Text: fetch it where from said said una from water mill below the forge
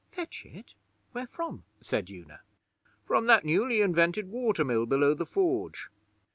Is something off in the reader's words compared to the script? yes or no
yes